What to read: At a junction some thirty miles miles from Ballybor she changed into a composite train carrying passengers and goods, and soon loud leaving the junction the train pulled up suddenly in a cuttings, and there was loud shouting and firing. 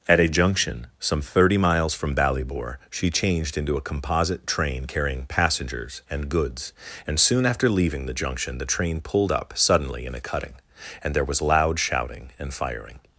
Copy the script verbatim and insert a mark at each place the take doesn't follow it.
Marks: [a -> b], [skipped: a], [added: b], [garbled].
At a junction some thirty miles [skipped: miles] from Ballybor she changed into a composite train carrying passengers and goods, and soon [loud -> after] leaving the junction the train pulled up suddenly in a [cuttings, -> cutting] and there was loud shouting and firing.